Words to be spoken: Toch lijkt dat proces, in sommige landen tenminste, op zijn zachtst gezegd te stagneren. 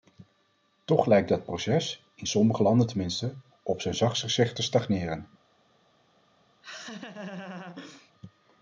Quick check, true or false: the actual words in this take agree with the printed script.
true